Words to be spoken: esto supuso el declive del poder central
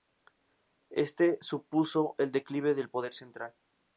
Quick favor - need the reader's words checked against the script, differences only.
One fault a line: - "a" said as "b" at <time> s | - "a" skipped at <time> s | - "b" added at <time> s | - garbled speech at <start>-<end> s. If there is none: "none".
none